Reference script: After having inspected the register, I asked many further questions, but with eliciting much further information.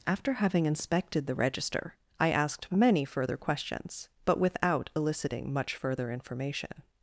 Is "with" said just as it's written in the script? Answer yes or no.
no